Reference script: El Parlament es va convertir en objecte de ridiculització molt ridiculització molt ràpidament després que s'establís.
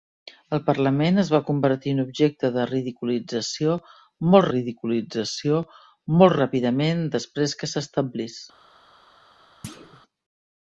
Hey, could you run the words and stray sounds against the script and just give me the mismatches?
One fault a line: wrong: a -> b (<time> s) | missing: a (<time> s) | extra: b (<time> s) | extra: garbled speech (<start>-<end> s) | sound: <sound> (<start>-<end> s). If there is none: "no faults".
sound: thud (9.6-10.0 s)